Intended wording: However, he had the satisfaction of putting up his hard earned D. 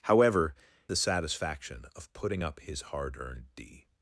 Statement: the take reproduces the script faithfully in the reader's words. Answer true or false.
false